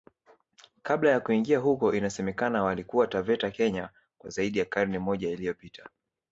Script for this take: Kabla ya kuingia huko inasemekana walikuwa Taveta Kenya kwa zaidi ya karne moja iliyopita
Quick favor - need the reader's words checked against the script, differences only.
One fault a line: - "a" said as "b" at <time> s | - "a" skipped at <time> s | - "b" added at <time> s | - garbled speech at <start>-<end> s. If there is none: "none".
none